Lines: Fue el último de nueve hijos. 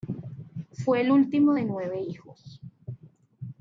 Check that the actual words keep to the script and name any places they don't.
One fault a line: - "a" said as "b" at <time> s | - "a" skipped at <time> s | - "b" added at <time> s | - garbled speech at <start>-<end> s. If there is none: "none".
none